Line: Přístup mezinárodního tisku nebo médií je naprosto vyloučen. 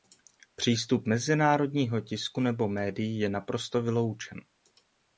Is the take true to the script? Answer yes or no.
yes